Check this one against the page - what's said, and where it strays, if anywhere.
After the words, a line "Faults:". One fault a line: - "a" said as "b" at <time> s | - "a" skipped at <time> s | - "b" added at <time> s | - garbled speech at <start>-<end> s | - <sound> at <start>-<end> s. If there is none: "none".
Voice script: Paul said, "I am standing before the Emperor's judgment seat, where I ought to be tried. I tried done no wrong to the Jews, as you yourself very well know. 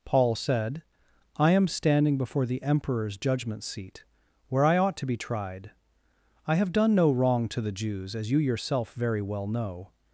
Paul said, "I am standing before the Emperor's judgment seat, where I ought to be tried. I have done no wrong to the Jews, as you yourself very well know.
Faults:
- "tried" said as "have" at 6.6 s